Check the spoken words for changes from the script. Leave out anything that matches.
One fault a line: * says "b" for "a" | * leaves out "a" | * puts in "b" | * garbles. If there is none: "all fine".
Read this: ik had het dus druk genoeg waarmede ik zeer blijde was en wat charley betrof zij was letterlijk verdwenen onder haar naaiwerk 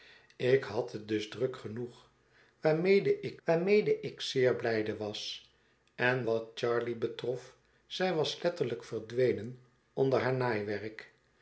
* puts in "waarmede ik"